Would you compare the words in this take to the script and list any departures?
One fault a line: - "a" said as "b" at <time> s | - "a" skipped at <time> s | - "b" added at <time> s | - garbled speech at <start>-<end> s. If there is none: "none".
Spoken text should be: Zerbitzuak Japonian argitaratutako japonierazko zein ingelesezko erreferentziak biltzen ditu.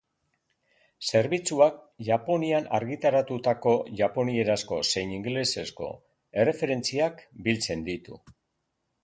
none